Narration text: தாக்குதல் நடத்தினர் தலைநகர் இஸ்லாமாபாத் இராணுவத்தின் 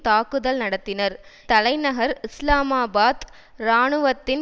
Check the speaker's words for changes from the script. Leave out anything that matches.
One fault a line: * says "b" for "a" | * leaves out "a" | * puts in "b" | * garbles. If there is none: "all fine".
all fine